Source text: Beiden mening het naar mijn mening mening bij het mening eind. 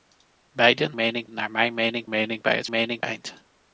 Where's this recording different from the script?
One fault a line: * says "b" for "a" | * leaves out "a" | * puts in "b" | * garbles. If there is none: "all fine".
all fine